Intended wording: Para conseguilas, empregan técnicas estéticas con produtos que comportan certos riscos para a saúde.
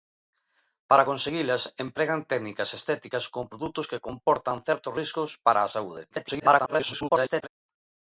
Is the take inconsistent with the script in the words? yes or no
yes